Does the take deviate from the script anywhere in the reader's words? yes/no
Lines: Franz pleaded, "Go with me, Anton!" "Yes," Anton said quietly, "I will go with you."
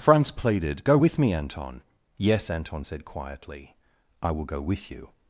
no